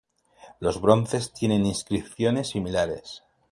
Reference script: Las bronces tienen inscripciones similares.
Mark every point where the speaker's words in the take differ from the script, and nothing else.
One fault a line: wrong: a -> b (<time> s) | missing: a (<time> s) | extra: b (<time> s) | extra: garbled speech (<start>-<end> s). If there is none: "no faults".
wrong: Las -> Los (0.6 s)